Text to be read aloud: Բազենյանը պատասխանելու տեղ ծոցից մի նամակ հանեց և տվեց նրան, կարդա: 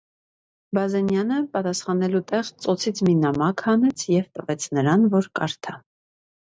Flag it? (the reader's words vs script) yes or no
yes